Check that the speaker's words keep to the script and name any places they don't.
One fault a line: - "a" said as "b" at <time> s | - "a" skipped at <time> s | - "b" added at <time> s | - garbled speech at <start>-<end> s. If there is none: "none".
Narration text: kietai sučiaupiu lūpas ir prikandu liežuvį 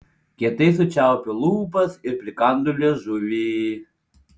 none